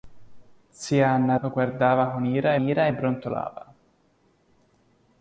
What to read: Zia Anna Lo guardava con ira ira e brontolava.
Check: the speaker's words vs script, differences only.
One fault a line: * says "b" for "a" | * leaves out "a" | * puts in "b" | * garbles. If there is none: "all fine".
all fine